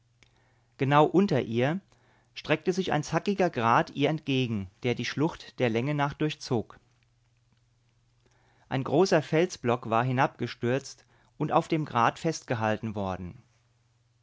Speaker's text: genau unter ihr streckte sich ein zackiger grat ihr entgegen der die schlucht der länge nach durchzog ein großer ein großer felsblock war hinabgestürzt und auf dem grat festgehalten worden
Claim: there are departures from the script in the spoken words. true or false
true